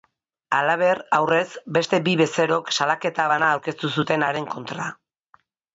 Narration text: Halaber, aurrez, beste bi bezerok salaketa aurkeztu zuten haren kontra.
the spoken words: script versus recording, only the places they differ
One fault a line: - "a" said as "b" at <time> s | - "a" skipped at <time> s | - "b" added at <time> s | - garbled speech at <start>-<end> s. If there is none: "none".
- "bana" added at 3.3 s